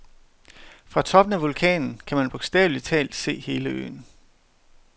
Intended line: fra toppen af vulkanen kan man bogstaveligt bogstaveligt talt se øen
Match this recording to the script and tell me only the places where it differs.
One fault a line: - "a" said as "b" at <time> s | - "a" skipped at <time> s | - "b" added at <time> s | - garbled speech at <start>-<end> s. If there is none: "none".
- "bogstaveligt" skipped at 2.9 s
- "hele" added at 3.4 s